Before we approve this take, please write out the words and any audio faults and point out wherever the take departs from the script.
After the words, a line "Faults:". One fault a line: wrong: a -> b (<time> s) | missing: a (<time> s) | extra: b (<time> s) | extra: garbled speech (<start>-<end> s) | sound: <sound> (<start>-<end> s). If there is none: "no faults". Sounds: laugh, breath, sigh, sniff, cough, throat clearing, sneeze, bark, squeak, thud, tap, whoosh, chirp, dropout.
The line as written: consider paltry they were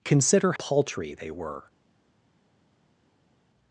consider paltry they were
Faults:
no faults